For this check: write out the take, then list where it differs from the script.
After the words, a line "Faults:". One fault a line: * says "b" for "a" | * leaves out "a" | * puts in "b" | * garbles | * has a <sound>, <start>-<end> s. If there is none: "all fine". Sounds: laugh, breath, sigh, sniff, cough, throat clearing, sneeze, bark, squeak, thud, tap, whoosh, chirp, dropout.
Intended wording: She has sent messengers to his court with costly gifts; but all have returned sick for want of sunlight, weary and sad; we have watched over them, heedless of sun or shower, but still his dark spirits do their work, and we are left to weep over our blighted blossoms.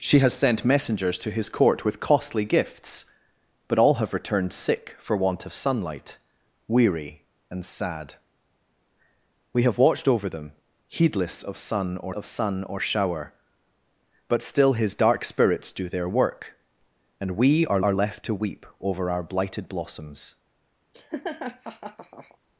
She has sent messengers to his court with costly gifts; but all have returned sick for want of sunlight, weary and sad; we have watched over them, heedless of sun or of sun or shower, but still his dark spirits do their work, and we are are left to weep over our blighted blossoms.
Faults:
* puts in "of sun or"
* puts in "are"
* has a laugh, 20.9-22.4 s